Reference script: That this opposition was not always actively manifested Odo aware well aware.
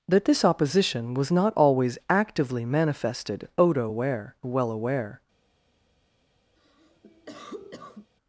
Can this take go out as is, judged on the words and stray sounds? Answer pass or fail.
fail